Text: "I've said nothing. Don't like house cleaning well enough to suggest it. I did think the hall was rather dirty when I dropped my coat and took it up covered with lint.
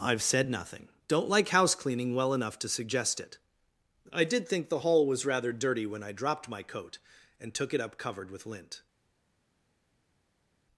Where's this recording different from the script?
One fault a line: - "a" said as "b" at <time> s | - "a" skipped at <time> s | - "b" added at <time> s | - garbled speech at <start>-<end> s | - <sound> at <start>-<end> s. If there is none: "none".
none